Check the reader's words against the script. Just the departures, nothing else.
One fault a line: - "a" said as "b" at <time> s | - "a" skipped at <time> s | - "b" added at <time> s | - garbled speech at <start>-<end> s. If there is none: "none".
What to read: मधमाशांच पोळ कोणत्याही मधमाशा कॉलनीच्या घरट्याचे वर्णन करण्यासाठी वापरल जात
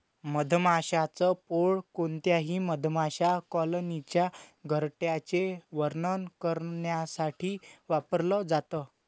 none